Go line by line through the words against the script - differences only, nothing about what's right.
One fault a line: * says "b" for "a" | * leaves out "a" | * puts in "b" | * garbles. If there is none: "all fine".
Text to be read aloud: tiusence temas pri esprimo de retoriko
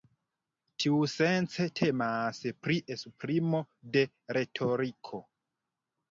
all fine